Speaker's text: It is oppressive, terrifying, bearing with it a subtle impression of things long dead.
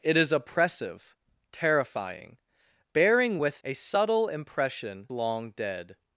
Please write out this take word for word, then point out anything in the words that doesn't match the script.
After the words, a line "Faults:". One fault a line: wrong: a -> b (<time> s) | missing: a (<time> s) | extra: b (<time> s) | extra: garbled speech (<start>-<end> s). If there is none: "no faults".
It is oppressive, terrifying, bearing with a subtle impression long dead.
Faults:
missing: it (3.6 s)
missing: of things (5.1 s)